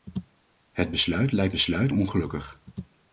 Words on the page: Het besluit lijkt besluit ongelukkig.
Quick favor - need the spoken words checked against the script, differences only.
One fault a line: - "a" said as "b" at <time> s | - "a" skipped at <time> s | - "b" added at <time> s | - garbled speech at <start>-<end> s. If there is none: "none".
none